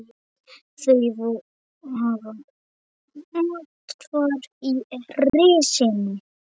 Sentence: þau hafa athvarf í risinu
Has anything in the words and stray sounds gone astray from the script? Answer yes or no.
yes